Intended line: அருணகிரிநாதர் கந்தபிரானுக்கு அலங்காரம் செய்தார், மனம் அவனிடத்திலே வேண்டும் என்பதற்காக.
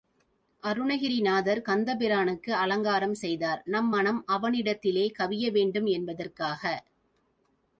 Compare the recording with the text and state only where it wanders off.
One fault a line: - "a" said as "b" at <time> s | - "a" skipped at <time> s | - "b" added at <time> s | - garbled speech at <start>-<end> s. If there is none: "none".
- "நம்" added at 3.7 s
- "கவிய" added at 5.2 s